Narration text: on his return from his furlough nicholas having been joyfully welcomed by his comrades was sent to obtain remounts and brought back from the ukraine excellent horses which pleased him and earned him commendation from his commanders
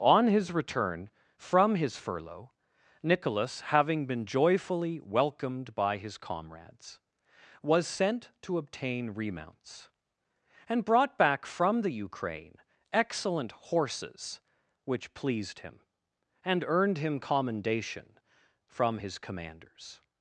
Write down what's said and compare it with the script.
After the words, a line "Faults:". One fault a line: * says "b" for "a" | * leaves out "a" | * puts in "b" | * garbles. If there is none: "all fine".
on his return from his furlough nicholas having been joyfully welcomed by his comrades was sent to obtain remounts and brought back from the ukraine excellent horses which pleased him and earned him commendation from his commanders
Faults:
all fine